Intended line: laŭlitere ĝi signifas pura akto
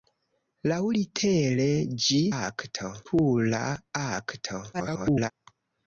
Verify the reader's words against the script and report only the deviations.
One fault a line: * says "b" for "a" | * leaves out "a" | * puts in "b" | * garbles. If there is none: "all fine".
* says "akto" for "signifas"
* garbles